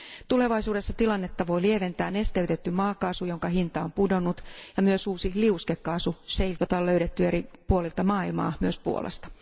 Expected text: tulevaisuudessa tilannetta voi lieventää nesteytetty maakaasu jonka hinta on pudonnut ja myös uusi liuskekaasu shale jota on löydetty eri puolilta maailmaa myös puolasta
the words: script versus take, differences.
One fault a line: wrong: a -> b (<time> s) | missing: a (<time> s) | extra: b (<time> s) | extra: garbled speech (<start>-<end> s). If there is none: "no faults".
no faults